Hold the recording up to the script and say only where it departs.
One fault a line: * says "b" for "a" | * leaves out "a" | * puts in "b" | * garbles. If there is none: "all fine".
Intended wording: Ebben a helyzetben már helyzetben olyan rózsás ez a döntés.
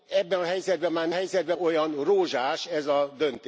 all fine